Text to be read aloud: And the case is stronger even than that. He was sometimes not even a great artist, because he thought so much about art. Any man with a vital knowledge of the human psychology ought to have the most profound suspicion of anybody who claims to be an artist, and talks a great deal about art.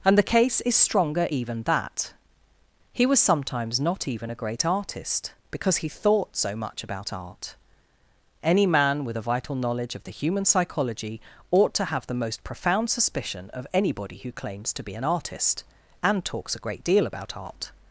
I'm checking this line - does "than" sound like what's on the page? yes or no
no